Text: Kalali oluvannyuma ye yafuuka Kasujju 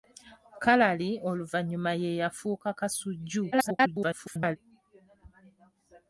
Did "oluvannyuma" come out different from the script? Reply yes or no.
no